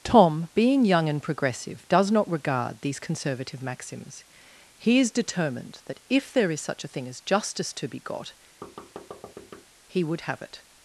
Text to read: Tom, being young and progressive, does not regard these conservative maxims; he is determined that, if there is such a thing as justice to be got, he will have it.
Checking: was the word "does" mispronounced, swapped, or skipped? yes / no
no